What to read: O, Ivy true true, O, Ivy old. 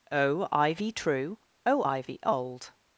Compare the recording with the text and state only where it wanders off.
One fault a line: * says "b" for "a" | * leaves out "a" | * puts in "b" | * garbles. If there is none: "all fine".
* leaves out "true"